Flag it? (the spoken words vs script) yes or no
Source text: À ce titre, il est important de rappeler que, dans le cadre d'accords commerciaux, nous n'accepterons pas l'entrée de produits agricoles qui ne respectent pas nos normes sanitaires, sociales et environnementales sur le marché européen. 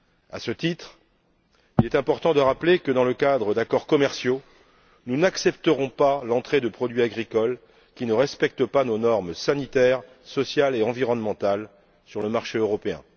no